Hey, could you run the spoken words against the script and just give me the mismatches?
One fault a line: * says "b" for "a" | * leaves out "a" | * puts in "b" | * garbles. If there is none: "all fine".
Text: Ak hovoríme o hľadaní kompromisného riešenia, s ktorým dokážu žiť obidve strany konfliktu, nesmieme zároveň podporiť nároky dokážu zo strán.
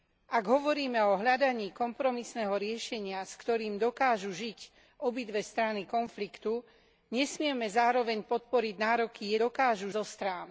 all fine